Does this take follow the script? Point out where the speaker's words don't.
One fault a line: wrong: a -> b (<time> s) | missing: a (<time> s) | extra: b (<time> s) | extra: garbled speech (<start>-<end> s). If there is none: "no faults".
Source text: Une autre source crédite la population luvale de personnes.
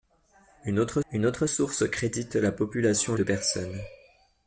extra: une autre (1.1 s)
missing: luvale (3.2 s)